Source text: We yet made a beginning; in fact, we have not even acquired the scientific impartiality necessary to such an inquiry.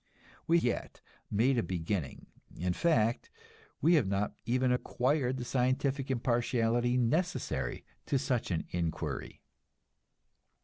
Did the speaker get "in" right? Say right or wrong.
right